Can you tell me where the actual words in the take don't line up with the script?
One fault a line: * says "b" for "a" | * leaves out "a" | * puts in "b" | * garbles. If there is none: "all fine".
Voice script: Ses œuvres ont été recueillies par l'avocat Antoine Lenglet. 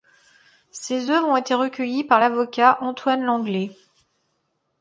all fine